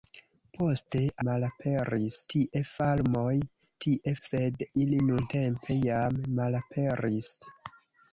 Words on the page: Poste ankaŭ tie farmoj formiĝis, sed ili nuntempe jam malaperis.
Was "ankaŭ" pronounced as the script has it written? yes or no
no